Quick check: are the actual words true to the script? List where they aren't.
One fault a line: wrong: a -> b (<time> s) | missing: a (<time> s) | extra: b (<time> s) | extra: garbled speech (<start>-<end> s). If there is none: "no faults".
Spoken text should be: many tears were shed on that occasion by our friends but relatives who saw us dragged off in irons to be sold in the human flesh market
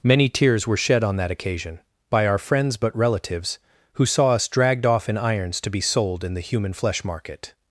no faults